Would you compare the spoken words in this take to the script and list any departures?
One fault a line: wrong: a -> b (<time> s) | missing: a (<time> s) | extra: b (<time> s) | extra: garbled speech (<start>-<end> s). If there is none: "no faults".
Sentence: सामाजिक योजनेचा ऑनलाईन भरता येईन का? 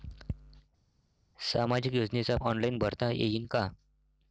no faults